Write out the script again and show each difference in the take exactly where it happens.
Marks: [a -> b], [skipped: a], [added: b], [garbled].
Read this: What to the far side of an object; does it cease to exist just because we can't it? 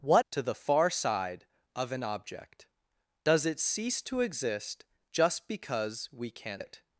What to the far side of an object; does it cease to exist just because we can't it?